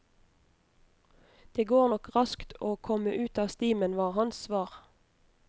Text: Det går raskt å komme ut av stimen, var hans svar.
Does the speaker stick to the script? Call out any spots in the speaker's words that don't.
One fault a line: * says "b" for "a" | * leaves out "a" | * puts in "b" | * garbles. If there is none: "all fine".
* puts in "nok"